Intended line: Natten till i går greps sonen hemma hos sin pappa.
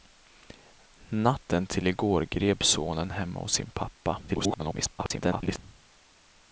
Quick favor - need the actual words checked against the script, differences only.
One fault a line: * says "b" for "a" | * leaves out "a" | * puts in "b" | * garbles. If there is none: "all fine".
* garbles